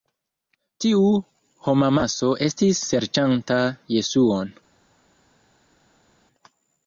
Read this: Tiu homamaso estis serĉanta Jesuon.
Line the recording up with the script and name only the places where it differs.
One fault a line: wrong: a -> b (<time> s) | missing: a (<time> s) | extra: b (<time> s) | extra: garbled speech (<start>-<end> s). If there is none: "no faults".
no faults